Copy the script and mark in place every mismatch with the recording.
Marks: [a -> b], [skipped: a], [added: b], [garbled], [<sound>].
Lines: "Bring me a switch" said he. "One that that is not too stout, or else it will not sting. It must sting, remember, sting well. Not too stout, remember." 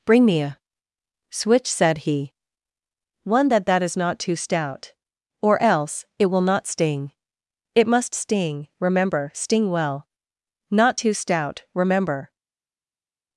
"Bring me a switch" said he. "One that that is not too stout, or else it will not sting. It must sting, remember, sting well. Not too stout, remember."